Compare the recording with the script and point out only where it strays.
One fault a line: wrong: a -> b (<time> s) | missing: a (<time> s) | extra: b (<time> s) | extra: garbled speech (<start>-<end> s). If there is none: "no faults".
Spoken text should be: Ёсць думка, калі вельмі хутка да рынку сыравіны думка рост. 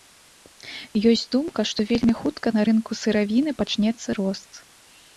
wrong: калі -> што (1.7 s)
wrong: да -> на (2.6 s)
wrong: думка -> пачнецца (3.6 s)